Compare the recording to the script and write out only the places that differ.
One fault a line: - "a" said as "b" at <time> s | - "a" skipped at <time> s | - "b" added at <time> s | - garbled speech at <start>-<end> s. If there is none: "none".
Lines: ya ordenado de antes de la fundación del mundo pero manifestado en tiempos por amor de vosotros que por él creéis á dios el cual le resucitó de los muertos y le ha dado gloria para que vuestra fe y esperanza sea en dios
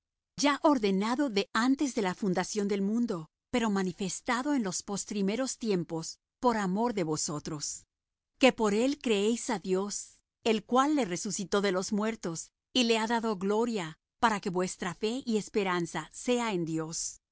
- "los postrimeros" added at 4.6 s